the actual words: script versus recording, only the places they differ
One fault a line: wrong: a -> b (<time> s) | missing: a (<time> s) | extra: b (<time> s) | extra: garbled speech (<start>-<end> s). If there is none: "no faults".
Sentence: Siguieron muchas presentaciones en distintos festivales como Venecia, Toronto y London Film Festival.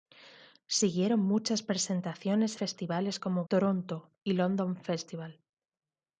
missing: en distintos (2.6 s)
missing: Venecia (3.4 s)
missing: Film (4.8 s)